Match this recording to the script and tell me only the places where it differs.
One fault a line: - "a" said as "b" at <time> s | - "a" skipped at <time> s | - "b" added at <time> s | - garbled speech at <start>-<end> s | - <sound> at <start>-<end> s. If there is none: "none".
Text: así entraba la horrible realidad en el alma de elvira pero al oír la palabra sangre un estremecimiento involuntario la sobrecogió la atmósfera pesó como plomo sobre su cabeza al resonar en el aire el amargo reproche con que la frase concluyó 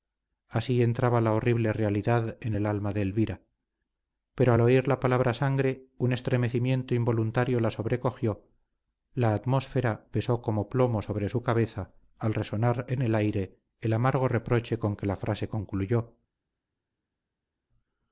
none